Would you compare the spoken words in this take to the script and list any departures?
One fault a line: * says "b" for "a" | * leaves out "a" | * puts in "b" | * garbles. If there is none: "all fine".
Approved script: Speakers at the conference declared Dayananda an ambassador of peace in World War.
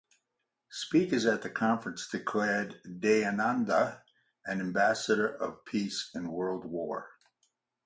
all fine